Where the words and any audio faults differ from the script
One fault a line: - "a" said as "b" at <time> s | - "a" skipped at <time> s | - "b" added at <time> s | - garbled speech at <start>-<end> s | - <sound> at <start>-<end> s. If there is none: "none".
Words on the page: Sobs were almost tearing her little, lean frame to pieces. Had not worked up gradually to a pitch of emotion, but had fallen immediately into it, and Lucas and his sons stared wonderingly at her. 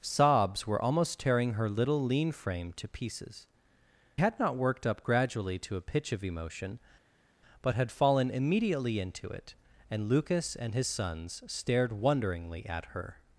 none